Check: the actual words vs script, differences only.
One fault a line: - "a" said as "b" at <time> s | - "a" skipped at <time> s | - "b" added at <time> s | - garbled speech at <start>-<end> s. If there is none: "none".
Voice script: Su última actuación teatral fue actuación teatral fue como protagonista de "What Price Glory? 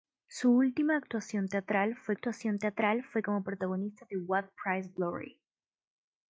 none